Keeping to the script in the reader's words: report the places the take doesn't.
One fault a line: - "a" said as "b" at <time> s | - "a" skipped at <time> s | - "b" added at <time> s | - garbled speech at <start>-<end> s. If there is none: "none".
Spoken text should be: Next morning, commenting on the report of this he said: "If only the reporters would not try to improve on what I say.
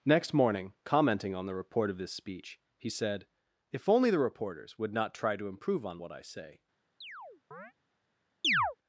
- "speech" added at 2.1 s